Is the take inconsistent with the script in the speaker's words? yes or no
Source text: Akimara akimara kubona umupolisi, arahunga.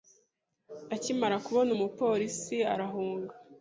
yes